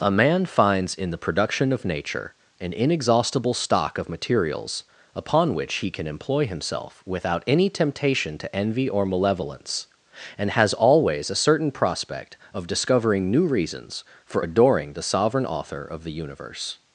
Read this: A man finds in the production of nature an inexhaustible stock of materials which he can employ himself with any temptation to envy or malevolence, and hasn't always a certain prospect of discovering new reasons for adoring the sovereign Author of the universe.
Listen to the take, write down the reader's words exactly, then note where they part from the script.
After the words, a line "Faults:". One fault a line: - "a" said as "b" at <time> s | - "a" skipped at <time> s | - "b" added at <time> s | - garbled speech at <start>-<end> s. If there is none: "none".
A man finds in the production of nature an inexhaustible stock of materials upon which he can employ himself without any temptation to envy or malevolence, and has always a certain prospect of discovering new reasons for adoring the sovereign Author of the universe.
Faults:
- "upon" added at 5.1 s
- "with" said as "without" at 7.0 s
- "hasn't" said as "has" at 10.5 s